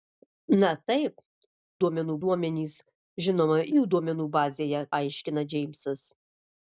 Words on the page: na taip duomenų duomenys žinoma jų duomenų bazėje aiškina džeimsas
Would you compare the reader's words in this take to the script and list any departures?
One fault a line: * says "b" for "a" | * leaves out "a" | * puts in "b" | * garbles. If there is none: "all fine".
all fine